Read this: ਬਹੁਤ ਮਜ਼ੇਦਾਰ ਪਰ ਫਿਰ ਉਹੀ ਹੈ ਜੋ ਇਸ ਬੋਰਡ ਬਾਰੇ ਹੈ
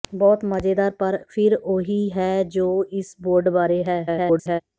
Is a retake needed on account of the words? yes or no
yes